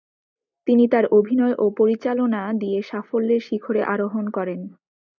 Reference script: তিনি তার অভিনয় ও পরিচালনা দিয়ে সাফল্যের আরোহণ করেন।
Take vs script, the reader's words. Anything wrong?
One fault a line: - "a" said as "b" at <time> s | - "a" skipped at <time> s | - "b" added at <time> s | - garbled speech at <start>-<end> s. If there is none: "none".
- "শিখরে" added at 3.4 s